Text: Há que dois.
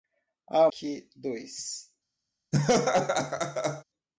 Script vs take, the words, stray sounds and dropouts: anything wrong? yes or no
yes